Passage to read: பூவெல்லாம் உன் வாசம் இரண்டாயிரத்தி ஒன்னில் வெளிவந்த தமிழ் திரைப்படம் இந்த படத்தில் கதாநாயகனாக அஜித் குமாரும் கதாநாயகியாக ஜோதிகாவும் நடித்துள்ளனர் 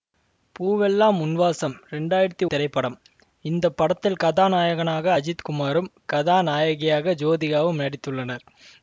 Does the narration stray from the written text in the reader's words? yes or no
yes